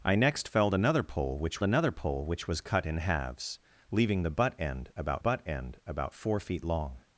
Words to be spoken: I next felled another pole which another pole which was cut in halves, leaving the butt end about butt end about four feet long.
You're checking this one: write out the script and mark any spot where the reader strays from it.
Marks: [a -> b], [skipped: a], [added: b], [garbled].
I next felled another pole which another pole which was cut in halves, leaving the butt end about butt end about four feet long.